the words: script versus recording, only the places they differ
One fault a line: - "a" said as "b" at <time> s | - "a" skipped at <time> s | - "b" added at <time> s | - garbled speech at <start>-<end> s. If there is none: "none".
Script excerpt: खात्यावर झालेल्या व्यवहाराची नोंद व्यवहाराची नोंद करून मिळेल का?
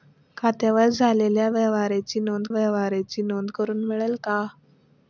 none